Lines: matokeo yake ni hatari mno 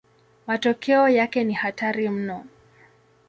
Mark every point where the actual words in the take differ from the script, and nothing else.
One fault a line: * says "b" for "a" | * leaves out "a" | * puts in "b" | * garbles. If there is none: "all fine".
all fine